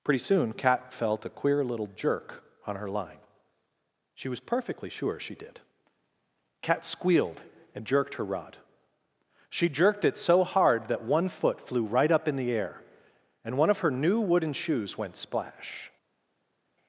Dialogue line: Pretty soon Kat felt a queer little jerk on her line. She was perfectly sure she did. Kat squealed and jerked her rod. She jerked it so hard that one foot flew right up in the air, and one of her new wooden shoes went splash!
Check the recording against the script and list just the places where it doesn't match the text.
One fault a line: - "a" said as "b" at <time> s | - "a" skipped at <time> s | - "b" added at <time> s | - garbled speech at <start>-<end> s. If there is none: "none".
none